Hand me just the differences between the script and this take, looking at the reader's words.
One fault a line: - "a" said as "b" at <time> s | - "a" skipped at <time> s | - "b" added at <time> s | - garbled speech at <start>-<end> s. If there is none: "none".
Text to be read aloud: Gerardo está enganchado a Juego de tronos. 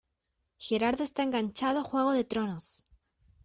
none